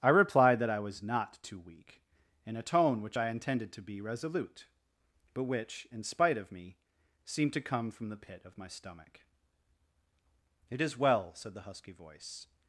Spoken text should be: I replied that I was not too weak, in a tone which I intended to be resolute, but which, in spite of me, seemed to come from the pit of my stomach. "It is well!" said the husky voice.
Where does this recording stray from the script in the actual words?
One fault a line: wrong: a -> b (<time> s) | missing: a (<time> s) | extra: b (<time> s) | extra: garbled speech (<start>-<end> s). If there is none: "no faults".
no faults